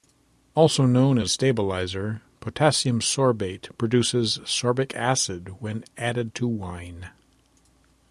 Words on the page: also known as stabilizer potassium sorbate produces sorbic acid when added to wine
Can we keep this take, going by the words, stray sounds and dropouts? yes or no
yes